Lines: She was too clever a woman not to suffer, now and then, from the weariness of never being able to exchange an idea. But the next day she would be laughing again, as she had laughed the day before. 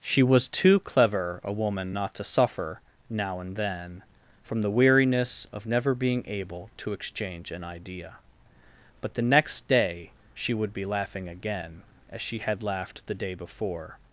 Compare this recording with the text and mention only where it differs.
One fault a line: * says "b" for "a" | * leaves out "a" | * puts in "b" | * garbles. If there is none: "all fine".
all fine